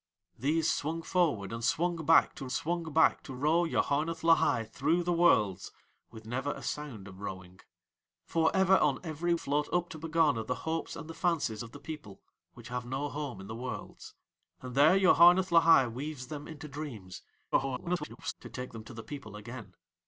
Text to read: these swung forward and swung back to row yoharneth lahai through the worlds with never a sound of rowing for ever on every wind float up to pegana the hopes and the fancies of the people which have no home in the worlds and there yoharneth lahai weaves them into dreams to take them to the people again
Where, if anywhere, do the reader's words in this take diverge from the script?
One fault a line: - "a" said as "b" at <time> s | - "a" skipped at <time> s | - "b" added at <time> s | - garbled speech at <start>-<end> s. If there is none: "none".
- "swung back to" added at 2.5 s
- "wind" skipped at 9.3 s
- garbled speech at 17.5-18.3 s